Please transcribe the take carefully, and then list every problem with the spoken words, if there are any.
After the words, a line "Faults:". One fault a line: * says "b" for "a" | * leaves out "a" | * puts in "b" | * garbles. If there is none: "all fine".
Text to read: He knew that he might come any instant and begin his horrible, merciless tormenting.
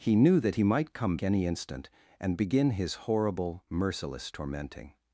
He knew that he might come any instant and begin his horrible, merciless tormenting.
Faults:
all fine